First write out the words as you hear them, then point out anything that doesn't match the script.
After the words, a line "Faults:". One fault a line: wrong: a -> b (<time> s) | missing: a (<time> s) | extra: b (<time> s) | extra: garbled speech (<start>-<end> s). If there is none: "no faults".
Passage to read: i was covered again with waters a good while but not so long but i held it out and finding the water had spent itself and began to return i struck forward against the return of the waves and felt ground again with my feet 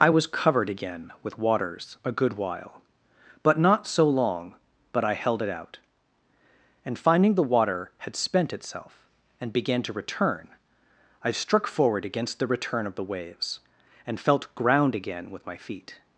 i was covered again with waters a good while but not so long but i held it out and finding the water had spent itself and began to return i struck forward against the return of the waves and felt ground again with my feet
Faults:
no faults